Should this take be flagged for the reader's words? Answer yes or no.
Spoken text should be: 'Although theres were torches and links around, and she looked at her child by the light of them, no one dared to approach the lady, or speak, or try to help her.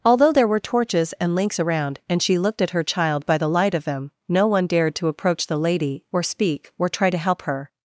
yes